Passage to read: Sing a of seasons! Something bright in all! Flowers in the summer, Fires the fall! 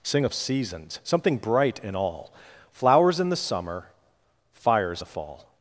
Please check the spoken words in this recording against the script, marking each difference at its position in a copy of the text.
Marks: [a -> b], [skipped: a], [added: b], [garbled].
Sing a of seasons! Something bright in all! Flowers in the summer, Fires the fall!